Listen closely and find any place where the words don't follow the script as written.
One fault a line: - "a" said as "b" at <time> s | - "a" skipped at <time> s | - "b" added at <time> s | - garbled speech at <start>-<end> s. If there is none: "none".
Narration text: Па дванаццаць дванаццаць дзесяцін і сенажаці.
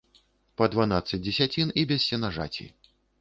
- "дванаццаць" skipped at 1.2 s
- "без" added at 1.9 s